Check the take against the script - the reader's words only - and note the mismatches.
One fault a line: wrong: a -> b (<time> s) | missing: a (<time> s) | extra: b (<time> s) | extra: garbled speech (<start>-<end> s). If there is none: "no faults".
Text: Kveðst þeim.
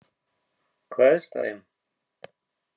no faults